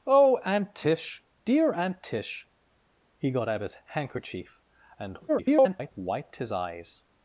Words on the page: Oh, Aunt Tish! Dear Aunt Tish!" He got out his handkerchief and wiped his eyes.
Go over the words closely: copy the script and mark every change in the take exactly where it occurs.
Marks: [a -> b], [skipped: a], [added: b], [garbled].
Oh, Aunt Tish! Dear Aunt Tish!" He got out his handkerchief and [garbled] wiped his eyes.